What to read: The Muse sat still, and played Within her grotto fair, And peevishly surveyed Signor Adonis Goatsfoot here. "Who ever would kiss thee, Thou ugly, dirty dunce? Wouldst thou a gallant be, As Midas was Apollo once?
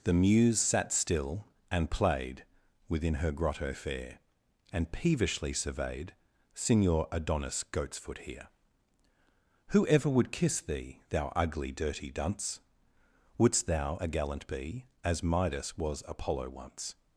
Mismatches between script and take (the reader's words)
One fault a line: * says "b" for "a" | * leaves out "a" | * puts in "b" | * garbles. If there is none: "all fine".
all fine